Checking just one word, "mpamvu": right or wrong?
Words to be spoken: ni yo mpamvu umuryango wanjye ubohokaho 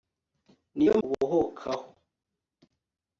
wrong